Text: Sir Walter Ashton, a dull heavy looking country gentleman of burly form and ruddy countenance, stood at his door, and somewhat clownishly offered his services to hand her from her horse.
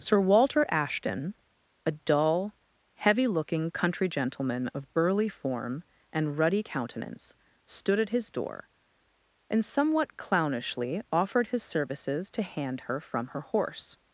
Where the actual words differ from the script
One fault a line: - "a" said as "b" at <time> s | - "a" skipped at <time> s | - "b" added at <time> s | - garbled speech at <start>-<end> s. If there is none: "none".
none